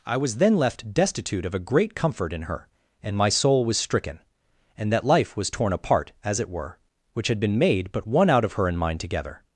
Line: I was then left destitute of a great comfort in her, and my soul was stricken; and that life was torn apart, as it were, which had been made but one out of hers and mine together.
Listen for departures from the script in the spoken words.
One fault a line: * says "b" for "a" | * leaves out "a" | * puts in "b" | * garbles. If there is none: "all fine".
* says "her" for "hers"